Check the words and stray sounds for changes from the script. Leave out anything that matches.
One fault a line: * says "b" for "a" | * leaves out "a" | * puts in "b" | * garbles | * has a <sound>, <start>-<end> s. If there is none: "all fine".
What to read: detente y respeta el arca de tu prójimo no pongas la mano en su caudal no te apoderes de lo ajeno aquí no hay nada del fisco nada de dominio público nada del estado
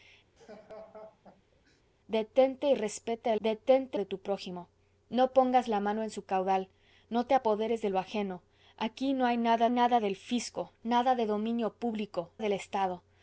* has a laugh, 0.4-1.8 s
* says "detente" for "arca"
* puts in "nada"
* leaves out "nada"